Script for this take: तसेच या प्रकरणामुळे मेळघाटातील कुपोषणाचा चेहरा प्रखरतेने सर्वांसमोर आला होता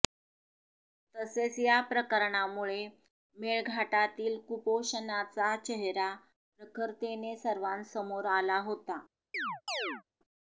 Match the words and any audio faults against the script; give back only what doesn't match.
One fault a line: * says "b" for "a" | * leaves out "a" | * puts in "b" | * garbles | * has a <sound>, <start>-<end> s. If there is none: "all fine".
* has a chirp, 9.3-10.0 s